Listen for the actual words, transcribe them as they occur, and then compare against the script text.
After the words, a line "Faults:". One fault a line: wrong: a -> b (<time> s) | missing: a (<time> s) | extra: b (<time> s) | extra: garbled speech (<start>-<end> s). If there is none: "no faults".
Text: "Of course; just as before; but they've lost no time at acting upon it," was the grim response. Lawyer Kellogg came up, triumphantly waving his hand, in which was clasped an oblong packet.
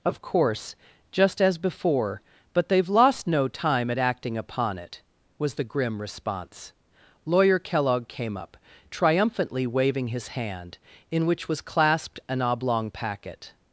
"Of course; just as before; but they've lost no time at acting upon it," was the grim response. Lawyer Kellogg came up, triumphantly waving his hand, in which was clasped an oblong packet.
Faults:
no faults